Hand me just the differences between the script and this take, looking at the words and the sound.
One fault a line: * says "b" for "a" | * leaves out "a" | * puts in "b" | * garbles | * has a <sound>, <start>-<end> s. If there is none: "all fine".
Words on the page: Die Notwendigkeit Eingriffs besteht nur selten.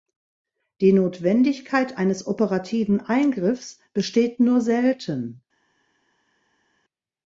* puts in "eines operativen"